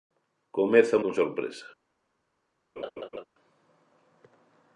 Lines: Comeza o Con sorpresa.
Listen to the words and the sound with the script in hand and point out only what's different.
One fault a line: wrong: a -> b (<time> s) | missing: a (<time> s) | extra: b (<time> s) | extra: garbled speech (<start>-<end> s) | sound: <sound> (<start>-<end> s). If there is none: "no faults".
sound: laugh (2.8-3.2 s)